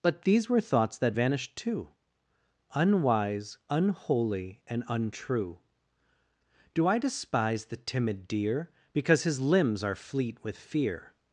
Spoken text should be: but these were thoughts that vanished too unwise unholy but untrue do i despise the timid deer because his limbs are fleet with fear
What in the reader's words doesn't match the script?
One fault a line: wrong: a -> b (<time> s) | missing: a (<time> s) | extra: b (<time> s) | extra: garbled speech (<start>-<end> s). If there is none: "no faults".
wrong: but -> and (4.7 s)